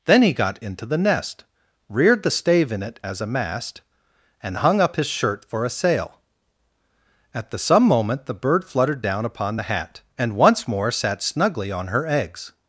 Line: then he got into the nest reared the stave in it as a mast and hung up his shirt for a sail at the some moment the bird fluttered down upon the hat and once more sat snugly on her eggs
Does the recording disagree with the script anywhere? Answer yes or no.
no